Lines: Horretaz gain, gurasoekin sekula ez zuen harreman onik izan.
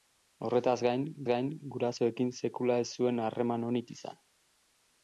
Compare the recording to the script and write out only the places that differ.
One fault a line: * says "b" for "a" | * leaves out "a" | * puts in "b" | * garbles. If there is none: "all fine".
* puts in "gain"